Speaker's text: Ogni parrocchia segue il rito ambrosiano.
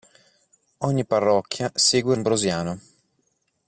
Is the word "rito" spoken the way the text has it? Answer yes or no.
no